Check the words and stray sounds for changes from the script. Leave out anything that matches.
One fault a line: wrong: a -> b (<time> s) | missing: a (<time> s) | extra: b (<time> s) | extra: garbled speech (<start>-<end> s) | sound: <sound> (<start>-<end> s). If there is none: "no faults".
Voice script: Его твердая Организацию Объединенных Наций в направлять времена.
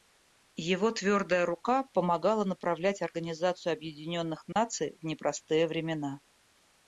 extra: рука помогала направлять (1.4 s)
sound: dropout (4.5-4.6 s)
wrong: направлять -> непростые (5.0 s)